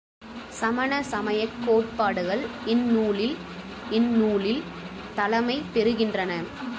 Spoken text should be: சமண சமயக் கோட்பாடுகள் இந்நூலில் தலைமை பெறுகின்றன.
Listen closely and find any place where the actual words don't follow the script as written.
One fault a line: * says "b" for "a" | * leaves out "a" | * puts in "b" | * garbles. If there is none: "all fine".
* puts in "இந்நூலில்"